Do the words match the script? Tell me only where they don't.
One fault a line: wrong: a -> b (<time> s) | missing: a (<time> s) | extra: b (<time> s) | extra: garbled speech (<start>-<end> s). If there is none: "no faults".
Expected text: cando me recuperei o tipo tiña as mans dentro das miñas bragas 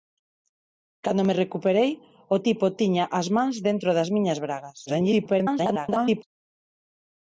extra: garbled speech (4.9-6.2 s)